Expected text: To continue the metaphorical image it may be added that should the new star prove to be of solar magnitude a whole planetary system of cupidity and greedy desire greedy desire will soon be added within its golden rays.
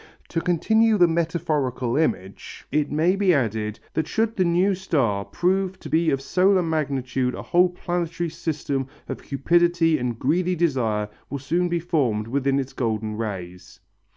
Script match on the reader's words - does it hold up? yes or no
no